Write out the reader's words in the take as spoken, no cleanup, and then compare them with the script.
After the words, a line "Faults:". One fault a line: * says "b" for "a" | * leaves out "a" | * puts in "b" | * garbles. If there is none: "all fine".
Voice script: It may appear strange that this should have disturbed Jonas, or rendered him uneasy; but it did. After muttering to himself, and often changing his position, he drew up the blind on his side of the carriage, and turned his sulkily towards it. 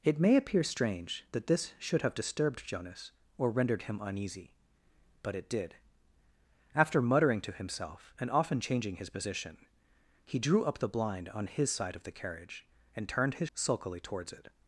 It may appear strange that this should have disturbed Jonas, or rendered him uneasy; but it did. After muttering to himself, and often changing his position, he drew up the blind on his side of the carriage, and turned his sulkily towards it.
Faults:
all fine